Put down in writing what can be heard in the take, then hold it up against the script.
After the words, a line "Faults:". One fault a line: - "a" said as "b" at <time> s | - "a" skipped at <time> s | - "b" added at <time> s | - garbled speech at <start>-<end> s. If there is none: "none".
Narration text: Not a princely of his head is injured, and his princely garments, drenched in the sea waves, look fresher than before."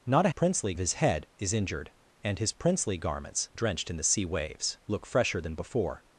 Not a princely of his head is injured, and his princely garments, drenched in the sea waves, look fresher than before."
Faults:
none